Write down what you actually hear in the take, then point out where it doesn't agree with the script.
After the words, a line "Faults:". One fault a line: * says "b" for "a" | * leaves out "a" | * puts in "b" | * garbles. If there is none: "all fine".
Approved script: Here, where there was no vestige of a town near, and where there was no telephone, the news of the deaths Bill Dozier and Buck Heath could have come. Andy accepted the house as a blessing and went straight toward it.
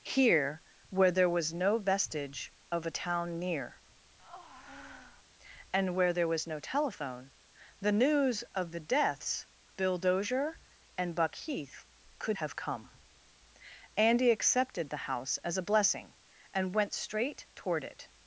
Here, where there was no vestige of a town near, and where there was no telephone, the news of the deaths Bill Dozier and Buck Heath could have come. Andy accepted the house as a blessing and went straight toward it.
Faults:
all fine